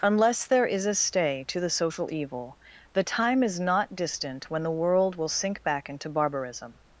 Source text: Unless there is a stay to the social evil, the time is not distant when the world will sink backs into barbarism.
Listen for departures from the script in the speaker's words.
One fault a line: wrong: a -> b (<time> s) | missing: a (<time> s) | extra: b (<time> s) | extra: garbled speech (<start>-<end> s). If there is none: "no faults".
wrong: backs -> back (5.6 s)